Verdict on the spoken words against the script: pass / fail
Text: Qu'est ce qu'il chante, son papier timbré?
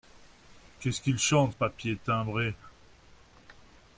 fail